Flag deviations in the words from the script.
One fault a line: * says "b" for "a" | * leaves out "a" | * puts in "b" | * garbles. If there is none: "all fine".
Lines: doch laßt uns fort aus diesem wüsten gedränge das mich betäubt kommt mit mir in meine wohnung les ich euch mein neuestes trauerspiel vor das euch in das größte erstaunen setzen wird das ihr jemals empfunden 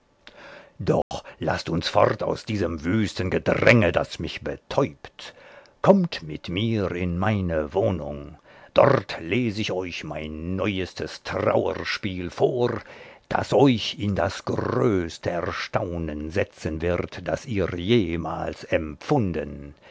* puts in "dort"